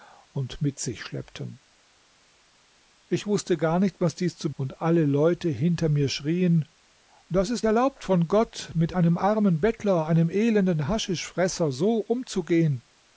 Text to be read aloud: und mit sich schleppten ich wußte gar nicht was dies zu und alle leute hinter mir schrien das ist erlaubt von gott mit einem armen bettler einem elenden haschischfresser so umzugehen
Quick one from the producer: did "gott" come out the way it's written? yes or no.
yes